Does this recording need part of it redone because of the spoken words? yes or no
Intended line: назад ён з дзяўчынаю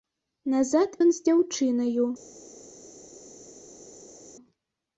no